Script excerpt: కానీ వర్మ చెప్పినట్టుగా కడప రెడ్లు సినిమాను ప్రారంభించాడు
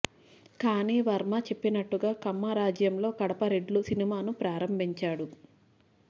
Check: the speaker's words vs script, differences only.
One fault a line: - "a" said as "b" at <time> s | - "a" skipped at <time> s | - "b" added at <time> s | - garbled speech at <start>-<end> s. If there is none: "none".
- "కమ్మ రాజ్యంలో" added at 2.2 s